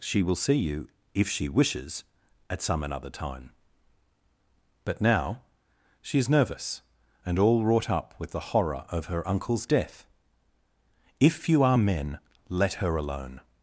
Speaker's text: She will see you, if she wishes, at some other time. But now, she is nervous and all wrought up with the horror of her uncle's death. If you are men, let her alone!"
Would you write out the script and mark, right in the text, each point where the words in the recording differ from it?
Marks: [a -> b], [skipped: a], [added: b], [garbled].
She will see you, if she wishes, at some [other -> another] time. But now, she is nervous and all wrought up with the horror of her uncle's death. If you are men, let her alone!"